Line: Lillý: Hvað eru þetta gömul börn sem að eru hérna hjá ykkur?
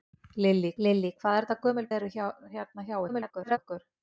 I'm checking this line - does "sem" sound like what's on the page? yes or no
no